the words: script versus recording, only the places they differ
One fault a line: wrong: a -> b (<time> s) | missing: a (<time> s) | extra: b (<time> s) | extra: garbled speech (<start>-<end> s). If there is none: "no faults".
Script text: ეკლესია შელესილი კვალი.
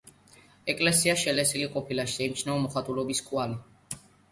extra: ყოფილა შეიმჩნევა მოხატულობის (1.8 s)